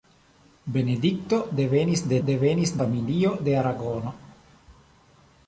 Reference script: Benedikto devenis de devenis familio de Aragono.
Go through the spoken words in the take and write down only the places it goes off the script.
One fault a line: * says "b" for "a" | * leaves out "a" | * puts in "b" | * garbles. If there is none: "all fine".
all fine